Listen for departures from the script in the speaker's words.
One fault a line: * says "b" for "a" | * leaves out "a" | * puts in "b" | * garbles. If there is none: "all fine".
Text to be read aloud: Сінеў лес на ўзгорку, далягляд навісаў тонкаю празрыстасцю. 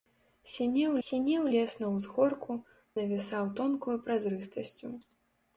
* puts in "сінеў"
* leaves out "далягляд"